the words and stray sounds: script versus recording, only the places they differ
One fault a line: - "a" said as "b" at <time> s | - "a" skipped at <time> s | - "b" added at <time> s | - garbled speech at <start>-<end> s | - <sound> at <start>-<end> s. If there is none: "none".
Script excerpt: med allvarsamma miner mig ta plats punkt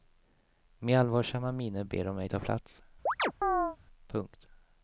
- "ber de" added at 1.8 s
- chirp at 3.1-3.8 s